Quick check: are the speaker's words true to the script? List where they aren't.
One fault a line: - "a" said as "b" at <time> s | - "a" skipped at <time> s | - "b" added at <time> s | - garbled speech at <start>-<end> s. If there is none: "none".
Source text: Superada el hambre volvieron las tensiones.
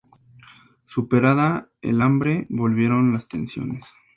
none